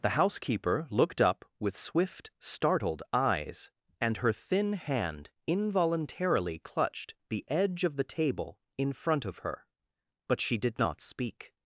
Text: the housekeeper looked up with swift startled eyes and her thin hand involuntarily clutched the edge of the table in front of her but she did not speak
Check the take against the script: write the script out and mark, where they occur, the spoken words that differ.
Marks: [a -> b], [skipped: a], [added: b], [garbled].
the housekeeper looked up with swift startled eyes and her thin hand involuntarily clutched the edge of the table in front of her but she did not speak